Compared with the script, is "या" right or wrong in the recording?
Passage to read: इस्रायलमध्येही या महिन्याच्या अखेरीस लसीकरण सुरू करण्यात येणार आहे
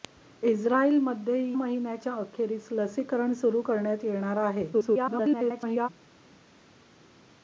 wrong